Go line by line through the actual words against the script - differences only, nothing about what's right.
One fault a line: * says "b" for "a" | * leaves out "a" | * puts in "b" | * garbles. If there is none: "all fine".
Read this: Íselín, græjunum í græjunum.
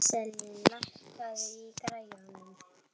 * says "lækkaðu" for "græjunum"